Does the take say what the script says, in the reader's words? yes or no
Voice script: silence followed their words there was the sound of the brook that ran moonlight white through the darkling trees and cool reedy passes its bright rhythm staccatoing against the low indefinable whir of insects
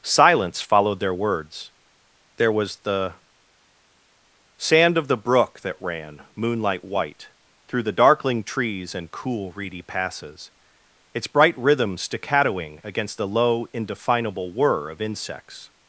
no